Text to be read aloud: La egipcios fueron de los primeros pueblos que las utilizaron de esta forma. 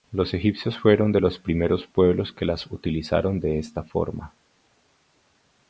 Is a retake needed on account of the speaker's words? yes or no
yes